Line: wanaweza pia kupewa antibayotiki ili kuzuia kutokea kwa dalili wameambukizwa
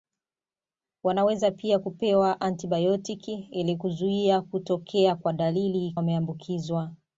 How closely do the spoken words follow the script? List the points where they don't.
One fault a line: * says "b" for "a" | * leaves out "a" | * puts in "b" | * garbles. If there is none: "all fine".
all fine